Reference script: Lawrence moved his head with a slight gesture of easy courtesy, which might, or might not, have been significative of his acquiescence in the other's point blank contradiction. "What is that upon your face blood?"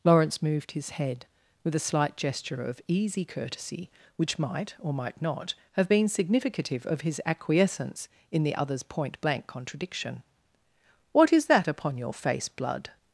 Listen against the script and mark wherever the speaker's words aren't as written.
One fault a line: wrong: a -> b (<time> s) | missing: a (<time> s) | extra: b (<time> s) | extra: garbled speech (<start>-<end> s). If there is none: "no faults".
no faults